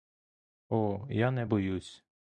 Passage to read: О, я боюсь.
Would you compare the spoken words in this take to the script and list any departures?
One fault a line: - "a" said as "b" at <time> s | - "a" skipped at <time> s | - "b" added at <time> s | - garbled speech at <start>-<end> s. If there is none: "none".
- "не" added at 1.3 s